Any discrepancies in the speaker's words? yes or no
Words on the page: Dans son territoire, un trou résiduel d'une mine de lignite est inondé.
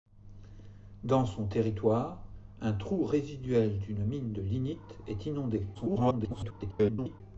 yes